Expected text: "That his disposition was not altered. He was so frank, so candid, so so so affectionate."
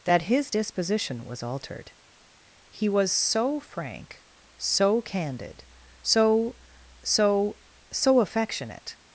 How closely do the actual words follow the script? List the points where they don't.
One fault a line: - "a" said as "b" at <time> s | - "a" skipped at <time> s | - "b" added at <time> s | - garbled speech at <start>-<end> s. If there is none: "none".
- "not" skipped at 1.4 s